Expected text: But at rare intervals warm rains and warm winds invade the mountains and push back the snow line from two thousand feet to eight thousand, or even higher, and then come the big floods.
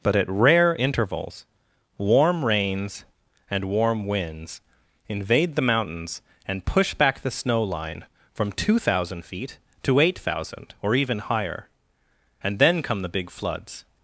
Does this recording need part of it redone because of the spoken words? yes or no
no